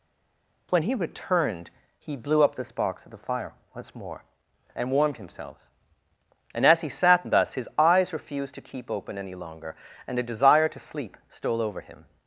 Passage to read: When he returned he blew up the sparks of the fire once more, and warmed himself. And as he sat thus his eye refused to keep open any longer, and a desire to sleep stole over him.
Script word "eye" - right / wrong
wrong